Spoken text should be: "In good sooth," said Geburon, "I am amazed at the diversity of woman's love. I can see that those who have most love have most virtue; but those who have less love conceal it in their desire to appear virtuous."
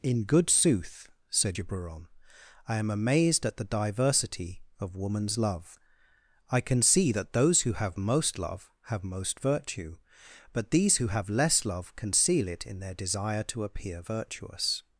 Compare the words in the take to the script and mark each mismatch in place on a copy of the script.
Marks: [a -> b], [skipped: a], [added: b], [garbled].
"In good sooth," said Geburon, "I am amazed at the diversity of woman's love. I can see that those who have most love have most virtue; but [those -> these] who have less love conceal it in their desire to appear virtuous."